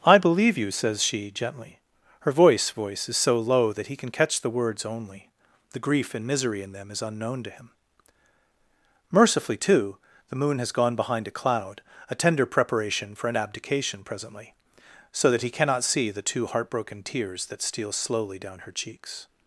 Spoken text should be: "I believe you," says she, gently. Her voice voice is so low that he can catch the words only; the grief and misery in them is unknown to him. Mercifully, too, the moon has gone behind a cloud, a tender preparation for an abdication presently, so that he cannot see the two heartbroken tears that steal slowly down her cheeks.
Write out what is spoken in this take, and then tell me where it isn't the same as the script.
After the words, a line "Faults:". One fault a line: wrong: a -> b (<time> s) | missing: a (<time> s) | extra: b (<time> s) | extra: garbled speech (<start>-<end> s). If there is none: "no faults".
"I believe you," says she, gently. Her voice voice is so low that he can catch the words only; the grief and misery in them is unknown to him. Mercifully, too, the moon has gone behind a cloud, a tender preparation for an abdication presently, so that he cannot see the two heartbroken tears that steal slowly down her cheeks.
Faults:
no faults